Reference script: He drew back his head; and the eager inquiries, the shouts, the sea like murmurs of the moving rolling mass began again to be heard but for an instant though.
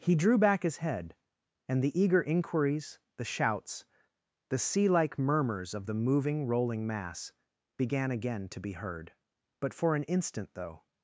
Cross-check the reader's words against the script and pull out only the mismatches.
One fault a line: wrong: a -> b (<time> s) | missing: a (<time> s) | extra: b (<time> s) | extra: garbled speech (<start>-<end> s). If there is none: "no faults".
no faults